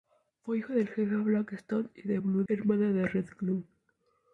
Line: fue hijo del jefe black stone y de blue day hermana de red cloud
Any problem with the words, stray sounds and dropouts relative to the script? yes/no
yes